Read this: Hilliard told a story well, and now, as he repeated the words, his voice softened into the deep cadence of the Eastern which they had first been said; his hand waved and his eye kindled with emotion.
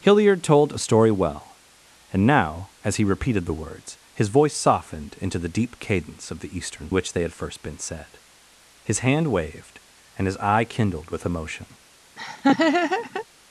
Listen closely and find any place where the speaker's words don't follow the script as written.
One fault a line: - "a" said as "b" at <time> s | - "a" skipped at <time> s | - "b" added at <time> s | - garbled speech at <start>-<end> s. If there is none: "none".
none